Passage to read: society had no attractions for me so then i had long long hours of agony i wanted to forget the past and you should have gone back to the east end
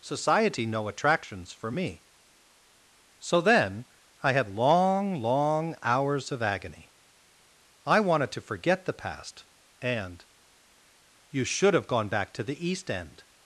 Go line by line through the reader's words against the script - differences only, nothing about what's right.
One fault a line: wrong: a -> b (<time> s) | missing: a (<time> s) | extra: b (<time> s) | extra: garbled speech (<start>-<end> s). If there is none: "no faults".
missing: had (0.7 s)